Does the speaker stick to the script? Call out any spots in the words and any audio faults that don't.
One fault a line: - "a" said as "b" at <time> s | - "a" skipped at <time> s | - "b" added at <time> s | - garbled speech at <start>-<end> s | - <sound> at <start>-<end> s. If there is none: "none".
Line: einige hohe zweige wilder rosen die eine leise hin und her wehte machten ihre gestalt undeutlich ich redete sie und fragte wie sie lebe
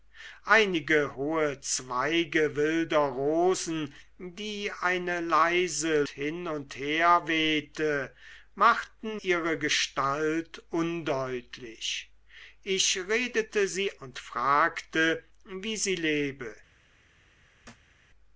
- thud at 17.6-18.0 s